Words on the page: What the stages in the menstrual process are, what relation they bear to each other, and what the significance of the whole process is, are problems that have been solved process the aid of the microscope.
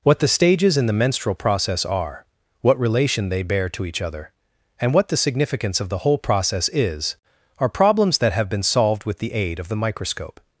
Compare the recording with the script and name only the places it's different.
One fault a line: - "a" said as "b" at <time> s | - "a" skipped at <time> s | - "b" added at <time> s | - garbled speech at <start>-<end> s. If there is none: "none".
- "process" said as "with" at 9.1 s